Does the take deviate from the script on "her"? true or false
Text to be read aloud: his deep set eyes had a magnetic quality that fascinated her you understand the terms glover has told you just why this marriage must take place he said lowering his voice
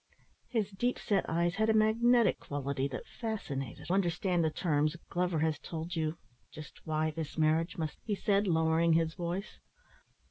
true